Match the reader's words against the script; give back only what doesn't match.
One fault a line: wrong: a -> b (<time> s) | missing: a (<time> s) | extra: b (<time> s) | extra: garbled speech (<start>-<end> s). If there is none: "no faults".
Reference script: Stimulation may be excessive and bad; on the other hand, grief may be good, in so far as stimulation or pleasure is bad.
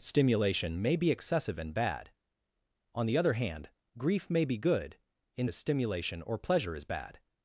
missing: so far (5.5 s)